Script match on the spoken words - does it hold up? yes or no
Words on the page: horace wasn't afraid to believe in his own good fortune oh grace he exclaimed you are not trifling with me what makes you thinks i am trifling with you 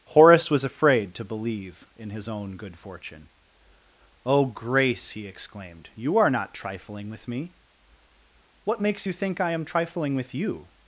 no